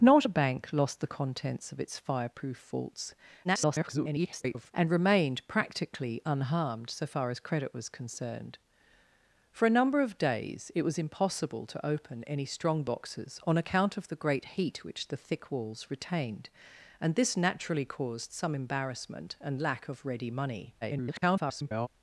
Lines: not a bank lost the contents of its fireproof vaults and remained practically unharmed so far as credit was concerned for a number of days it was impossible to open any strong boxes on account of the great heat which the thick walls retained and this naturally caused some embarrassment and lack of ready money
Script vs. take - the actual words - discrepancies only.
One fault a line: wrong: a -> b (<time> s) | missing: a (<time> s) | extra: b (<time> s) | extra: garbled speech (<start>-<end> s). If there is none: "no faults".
extra: garbled speech (3.4-4.7 s)
extra: garbled speech (20.8-21.9 s)